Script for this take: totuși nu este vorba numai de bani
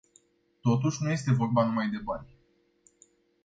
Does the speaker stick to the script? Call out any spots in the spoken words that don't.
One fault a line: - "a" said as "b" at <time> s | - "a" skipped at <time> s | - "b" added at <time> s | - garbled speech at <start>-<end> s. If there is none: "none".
none